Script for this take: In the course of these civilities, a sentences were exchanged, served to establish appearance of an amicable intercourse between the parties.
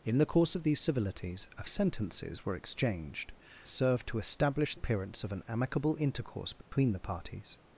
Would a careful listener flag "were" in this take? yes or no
no